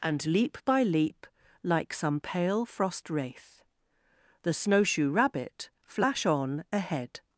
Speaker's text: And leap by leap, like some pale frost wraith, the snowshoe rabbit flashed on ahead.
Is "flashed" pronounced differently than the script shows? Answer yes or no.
yes